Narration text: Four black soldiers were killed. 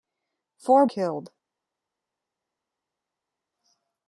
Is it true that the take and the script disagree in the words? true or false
true